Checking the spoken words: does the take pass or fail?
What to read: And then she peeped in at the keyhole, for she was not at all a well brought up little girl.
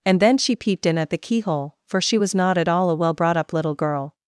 pass